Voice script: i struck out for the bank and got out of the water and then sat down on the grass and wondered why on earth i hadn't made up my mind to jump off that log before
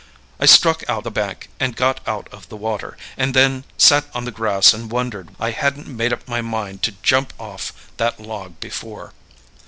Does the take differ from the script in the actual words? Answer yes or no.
yes